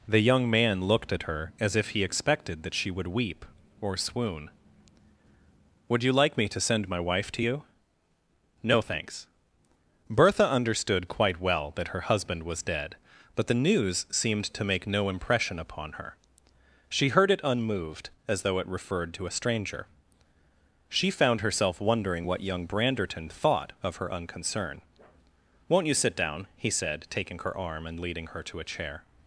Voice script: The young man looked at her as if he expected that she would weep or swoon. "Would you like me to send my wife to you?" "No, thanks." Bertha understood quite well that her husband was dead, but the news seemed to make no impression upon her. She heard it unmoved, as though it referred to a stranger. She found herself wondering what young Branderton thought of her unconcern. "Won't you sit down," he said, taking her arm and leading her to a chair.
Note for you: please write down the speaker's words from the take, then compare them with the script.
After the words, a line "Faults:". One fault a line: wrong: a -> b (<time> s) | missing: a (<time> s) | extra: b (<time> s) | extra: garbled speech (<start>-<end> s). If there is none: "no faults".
The young man looked at her as if he expected that she would weep or swoon. "Would you like me to send my wife to you?" "No, thanks." Bertha understood quite well that her husband was dead, but the news seemed to make no impression upon her. She heard it unmoved, as though it referred to a stranger. She found herself wondering what young Branderton thought of her unconcern. "Won't you sit down," he said, taking her arm and leading her to a chair.
Faults:
no faults